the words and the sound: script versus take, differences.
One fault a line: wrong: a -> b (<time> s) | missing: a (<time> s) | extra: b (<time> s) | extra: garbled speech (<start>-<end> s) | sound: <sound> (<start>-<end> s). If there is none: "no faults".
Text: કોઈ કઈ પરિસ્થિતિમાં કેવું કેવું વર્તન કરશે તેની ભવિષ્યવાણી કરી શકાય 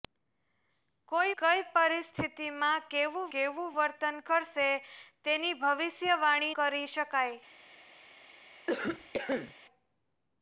sound: cough (8.7-9.5 s)